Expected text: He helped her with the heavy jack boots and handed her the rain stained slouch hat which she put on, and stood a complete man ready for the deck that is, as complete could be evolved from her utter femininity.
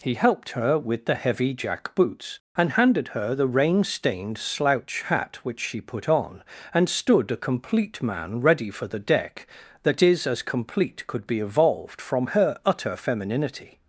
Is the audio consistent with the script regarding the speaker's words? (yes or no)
yes